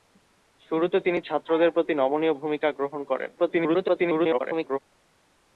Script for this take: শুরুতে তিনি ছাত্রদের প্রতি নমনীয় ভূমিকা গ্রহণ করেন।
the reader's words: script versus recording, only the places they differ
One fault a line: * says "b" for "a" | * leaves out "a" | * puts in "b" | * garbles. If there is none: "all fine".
* garbles